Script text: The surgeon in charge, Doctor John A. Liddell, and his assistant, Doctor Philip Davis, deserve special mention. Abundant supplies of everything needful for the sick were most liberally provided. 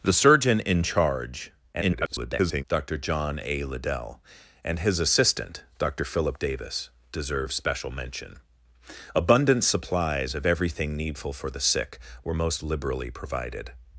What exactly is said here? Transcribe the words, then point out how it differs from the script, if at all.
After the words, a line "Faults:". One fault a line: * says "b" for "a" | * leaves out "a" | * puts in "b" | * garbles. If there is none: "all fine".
The surgeon in charge, [garbled] Doctor John A. Liddell, and his assistant, Doctor Philip Davis, deserve special mention. Abundant supplies of everything needful for the sick were most liberally provided.
Faults:
* garbles